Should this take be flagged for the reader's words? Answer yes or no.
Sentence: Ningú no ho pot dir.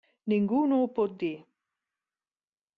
no